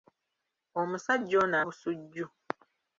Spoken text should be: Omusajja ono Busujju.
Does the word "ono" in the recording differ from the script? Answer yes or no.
no